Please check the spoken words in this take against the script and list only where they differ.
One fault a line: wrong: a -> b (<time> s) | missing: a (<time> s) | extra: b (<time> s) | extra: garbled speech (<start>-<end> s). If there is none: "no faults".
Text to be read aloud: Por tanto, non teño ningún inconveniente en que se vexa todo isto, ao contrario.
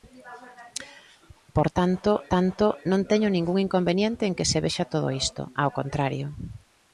extra: tanto (2.3 s)